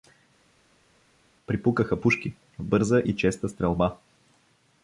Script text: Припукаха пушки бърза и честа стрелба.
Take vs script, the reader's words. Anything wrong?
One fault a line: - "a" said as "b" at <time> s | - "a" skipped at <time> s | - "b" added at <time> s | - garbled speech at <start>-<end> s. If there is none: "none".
none